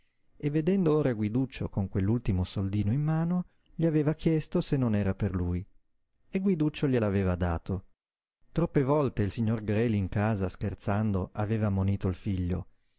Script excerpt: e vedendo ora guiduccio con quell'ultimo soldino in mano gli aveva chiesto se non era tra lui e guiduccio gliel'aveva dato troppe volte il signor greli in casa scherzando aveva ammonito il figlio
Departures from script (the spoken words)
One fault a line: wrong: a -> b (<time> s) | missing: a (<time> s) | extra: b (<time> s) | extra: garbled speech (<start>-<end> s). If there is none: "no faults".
wrong: tra -> per (5.1 s)